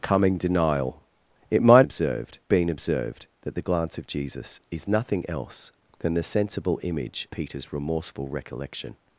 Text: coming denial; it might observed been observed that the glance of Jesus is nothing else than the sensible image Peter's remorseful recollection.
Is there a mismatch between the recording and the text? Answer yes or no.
no